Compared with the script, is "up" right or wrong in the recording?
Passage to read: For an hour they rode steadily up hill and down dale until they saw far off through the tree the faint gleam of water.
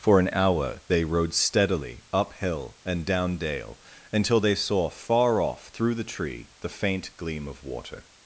right